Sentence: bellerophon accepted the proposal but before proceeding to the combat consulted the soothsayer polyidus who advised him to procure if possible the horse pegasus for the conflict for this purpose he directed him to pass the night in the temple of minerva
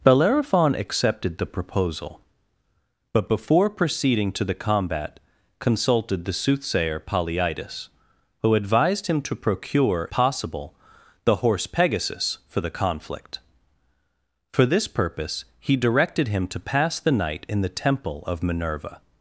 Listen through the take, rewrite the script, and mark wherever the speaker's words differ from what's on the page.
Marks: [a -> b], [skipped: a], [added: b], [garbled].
bellerophon accepted the proposal but before proceeding to the combat consulted the soothsayer polyidus who advised him to procure [skipped: if] possible the horse pegasus for the conflict for this purpose he directed him to pass the night in the temple of minerva